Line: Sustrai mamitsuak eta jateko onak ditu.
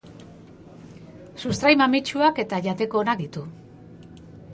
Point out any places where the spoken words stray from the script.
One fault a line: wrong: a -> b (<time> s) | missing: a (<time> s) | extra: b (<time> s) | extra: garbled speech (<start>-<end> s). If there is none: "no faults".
no faults